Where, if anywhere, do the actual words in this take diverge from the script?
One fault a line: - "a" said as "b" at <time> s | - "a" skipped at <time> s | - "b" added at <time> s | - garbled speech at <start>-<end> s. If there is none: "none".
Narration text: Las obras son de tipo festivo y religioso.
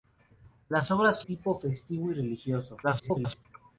- "son de" skipped at 1.2 s
- garbled speech at 2.8-3.5 s